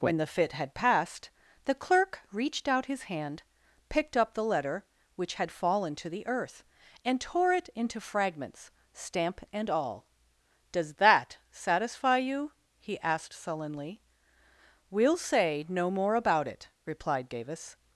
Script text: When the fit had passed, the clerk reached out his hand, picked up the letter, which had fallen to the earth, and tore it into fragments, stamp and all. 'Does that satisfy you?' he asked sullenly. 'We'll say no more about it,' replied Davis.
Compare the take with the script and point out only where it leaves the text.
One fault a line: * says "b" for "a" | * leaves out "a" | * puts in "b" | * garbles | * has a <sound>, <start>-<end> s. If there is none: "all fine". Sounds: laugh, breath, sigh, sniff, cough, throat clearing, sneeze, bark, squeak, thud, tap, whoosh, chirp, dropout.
all fine